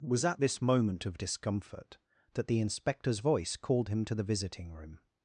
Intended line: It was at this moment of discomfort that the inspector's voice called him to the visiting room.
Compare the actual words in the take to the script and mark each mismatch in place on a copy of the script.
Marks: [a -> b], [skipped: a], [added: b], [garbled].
It was at this moment of discomfort that the inspector's voice called him to the visiting room.